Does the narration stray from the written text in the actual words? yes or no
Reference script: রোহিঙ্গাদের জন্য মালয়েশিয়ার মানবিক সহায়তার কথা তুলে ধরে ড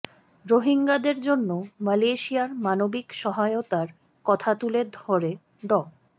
no